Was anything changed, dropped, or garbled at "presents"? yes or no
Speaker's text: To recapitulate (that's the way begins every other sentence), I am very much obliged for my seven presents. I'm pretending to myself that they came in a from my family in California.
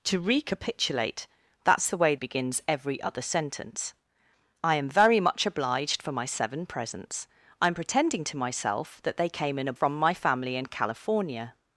no